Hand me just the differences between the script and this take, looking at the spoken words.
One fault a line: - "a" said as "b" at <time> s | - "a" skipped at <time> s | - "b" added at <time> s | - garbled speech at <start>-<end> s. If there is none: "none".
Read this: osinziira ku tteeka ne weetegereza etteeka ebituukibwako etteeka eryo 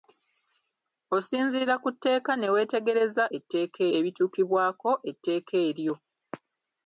none